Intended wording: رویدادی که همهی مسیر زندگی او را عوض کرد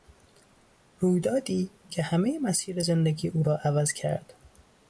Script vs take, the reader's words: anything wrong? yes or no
no